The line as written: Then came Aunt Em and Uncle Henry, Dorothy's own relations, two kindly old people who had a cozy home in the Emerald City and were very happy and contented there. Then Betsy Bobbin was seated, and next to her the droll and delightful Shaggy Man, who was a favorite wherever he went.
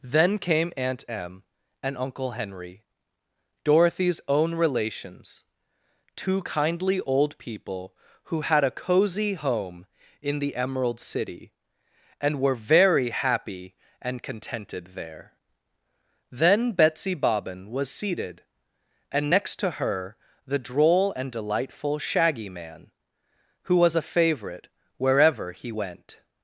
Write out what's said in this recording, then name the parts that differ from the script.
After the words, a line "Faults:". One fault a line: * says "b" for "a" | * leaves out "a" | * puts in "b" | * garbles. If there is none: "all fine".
Then came Aunt Em and Uncle Henry, Dorothy's own relations, two kindly old people who had a cozy home in the Emerald City and were very happy and contented there. Then Betsy Bobbin was seated, and next to her the droll and delightful Shaggy Man, who was a favorite wherever he went.
Faults:
all fine